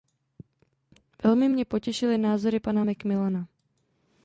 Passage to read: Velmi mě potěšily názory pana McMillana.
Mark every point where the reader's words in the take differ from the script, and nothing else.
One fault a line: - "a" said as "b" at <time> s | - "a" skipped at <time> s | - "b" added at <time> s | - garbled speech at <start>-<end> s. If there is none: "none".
none